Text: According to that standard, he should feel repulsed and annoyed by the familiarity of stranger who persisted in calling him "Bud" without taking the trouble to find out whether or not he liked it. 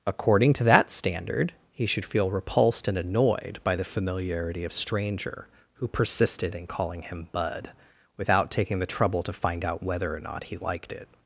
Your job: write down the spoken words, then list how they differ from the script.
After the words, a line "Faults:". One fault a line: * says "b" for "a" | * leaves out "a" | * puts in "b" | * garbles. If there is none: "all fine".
According to that standard, he should feel repulsed and annoyed by the familiarity of stranger who persisted in calling him "Bud" without taking the trouble to find out whether or not he liked it.
Faults:
all fine